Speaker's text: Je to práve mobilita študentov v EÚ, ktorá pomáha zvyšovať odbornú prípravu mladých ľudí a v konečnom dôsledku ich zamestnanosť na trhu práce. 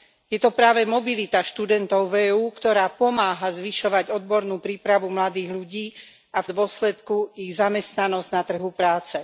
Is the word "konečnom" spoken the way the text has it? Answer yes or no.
no